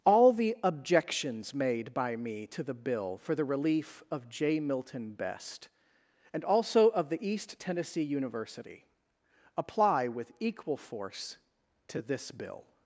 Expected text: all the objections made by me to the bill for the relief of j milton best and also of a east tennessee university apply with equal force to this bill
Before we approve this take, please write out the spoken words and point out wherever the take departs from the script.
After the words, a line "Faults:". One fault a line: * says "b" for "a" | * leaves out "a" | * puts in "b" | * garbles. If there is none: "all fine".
all the objections made by me to the bill for the relief of j milton best and also of the east tennessee university apply with equal force to this bill
Faults:
* says "the" for "a"